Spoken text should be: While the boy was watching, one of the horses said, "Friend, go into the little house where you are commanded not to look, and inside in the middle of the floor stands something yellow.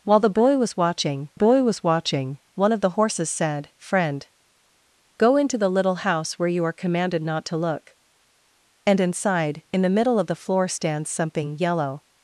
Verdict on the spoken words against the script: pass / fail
fail